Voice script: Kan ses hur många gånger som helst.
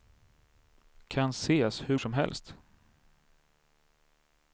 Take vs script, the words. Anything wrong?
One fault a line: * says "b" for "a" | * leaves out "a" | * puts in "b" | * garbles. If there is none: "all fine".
* leaves out "många gånger"